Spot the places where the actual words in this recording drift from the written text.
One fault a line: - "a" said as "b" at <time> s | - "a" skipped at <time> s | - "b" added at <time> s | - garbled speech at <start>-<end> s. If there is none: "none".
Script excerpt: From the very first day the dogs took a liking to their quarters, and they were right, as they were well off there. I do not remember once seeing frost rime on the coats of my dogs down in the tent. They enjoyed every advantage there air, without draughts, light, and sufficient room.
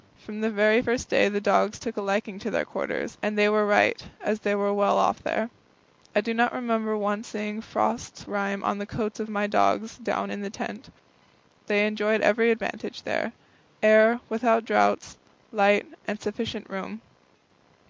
none